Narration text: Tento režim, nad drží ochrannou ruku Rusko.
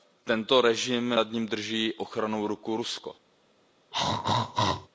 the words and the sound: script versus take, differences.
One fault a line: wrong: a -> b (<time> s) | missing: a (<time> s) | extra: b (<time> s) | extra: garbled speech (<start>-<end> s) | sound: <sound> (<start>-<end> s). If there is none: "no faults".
extra: ním (1.3 s)
sound: throat clearing (3.9-4.9 s)